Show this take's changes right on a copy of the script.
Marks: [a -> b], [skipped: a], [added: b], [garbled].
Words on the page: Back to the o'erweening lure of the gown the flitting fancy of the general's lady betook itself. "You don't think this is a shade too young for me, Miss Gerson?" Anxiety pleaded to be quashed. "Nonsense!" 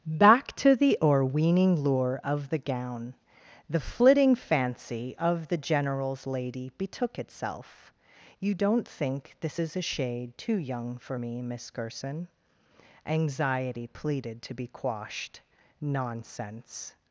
Back to the o'erweening lure of the gown the flitting fancy of the general's lady betook itself. "You don't think this is a shade too young for me, Miss Gerson?" Anxiety pleaded to be quashed. "Nonsense!"